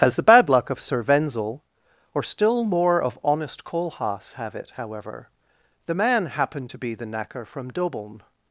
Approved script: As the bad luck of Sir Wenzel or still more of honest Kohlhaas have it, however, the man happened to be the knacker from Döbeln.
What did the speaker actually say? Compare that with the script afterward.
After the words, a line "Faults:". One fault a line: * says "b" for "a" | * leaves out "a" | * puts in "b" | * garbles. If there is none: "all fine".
As the bad luck of Sir Wenzel or still more of honest Kohlhaas have it, however, the man happened to be the knacker from Döbeln.
Faults:
all fine